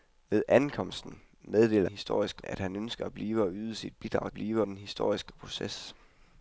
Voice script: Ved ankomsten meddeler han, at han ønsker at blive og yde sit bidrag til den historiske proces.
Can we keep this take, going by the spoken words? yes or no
no